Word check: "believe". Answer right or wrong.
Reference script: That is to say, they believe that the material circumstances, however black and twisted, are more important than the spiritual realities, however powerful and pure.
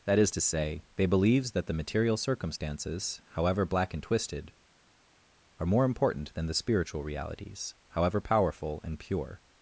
wrong